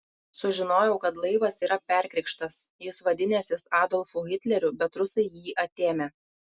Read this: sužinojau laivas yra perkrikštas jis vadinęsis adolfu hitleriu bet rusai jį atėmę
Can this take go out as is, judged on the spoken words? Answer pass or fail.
fail